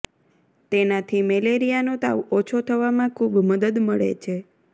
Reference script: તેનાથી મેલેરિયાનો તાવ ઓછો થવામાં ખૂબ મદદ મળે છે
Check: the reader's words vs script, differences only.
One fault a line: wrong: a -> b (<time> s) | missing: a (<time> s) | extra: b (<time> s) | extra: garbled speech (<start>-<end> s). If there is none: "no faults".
no faults